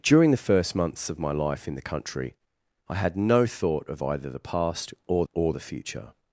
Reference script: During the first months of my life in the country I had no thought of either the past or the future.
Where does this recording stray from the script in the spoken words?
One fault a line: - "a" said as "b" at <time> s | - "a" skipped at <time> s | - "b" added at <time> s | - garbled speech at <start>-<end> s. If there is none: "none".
- "or" added at 5.3 s